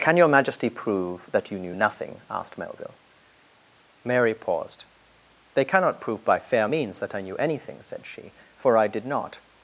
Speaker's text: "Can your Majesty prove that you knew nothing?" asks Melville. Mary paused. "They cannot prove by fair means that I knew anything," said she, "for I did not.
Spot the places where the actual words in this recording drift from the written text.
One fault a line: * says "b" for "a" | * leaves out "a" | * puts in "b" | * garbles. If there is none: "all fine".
* says "asked" for "asks"